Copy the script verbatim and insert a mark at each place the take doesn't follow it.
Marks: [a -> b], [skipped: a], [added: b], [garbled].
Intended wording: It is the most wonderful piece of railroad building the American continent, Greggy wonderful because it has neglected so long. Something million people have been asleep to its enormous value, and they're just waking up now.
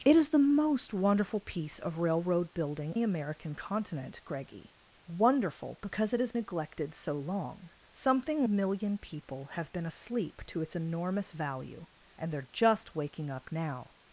It is the most wonderful piece of railroad building the American continent, Greggy wonderful because it has neglected so long. Something million people have been asleep to its enormous value, and they're just waking up now.